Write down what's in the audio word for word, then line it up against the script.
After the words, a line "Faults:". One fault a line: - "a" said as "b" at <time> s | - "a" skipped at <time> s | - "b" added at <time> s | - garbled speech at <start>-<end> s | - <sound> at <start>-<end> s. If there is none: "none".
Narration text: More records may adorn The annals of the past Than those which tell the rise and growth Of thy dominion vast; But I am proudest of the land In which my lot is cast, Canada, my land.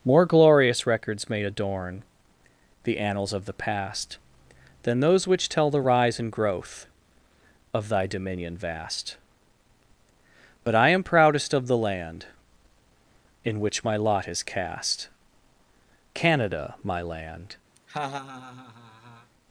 More glorious records may adorn The annals of the past Than those which tell the rise and growth Of thy dominion vast; But I am proudest of the land In which my lot is cast, Canada, my land.
Faults:
- "glorious" added at 0.2 s
- laugh at 17.8-19.3 s